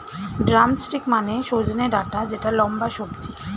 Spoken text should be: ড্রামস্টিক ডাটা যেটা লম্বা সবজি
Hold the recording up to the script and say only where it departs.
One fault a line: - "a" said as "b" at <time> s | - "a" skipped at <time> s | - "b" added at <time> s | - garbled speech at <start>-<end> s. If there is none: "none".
- "মানে সজনে" added at 1.1 s